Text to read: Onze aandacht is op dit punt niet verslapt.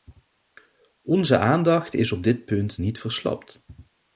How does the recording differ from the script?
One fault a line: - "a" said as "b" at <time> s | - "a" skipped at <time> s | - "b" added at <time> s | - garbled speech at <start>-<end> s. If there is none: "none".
none